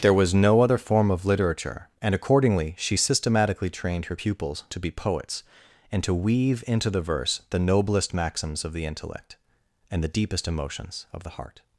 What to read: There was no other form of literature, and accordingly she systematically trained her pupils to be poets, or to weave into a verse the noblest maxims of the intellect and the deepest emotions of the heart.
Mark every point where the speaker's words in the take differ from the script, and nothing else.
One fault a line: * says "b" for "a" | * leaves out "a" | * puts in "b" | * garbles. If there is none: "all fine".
* says "and" for "or"
* says "the" for "a"